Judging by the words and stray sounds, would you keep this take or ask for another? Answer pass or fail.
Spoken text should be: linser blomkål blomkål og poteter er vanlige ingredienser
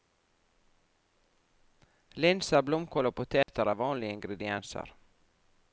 fail